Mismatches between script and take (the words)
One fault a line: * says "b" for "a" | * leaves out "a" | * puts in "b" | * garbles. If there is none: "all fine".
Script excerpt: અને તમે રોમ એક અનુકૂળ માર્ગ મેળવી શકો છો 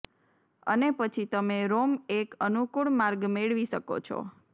* puts in "પછી"